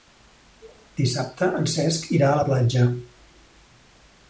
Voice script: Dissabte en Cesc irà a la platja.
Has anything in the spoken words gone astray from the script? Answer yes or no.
no